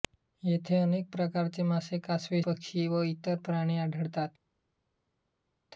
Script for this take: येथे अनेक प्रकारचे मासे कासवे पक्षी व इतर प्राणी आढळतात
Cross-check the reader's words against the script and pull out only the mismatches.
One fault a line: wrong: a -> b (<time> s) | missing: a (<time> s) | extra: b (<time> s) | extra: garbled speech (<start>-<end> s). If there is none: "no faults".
no faults